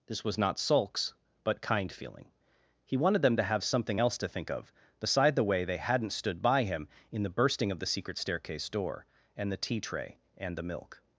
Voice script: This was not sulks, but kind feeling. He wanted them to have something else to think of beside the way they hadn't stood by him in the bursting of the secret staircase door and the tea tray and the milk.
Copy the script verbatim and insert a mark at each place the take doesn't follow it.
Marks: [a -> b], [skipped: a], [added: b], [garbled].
This was not sulks, but kind feeling. He wanted them to have something else to think of beside the way they hadn't stood by him in the bursting of the secret staircase door and the tea tray and the milk.